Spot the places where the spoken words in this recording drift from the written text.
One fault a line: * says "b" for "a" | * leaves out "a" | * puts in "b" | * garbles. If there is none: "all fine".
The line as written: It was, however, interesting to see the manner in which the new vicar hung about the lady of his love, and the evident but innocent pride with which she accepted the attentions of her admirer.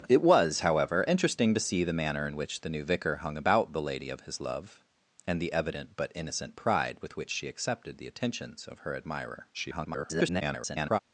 * garbles